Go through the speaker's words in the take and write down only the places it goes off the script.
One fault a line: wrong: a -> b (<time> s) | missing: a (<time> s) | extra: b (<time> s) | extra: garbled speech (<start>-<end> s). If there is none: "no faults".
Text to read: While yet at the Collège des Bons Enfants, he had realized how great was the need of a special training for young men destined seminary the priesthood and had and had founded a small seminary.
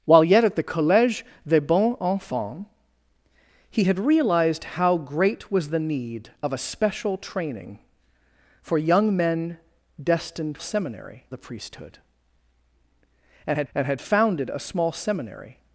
no faults